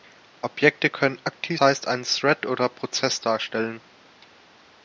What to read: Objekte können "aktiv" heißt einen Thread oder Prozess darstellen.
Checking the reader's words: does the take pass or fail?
pass